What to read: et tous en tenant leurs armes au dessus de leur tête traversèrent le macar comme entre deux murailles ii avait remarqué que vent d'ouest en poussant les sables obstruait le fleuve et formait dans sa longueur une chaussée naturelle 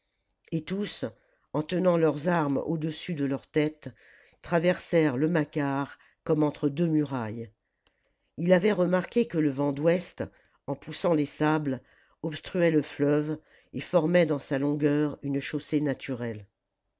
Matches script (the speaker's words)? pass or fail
fail